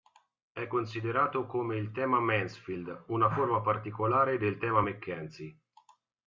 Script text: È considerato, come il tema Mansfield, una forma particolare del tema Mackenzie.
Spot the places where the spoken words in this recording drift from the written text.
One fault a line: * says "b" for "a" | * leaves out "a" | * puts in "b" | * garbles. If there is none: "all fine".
all fine